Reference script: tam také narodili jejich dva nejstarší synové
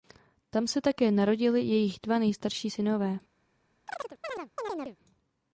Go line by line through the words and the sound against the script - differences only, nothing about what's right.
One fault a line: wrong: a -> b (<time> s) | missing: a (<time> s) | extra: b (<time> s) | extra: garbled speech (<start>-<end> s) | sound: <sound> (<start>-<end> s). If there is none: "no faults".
extra: se (0.7 s)
sound: chirp (3.9-5.0 s)